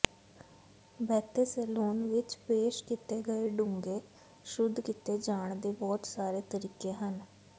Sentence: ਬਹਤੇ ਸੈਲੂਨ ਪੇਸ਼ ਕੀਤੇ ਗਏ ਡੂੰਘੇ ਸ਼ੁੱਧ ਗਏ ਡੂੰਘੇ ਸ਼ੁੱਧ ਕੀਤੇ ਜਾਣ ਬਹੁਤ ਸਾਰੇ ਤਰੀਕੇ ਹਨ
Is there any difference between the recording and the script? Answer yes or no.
yes